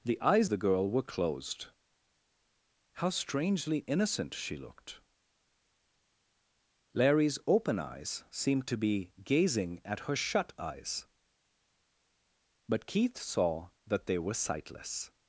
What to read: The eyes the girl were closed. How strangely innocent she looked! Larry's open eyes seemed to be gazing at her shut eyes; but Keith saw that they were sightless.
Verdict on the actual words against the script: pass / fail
pass